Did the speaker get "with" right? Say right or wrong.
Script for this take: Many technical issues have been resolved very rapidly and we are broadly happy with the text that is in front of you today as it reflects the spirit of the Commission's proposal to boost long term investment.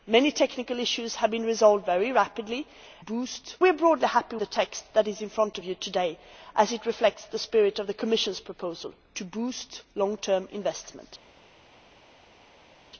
wrong